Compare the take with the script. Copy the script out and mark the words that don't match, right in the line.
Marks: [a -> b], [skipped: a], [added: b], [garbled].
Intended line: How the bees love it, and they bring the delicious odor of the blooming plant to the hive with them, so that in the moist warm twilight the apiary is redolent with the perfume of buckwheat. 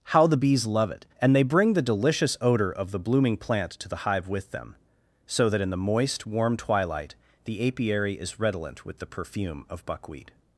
How the bees love it, and they bring the delicious odor of the blooming plant to the hive with them, so that in the moist warm twilight the apiary is redolent with the perfume of buckwheat.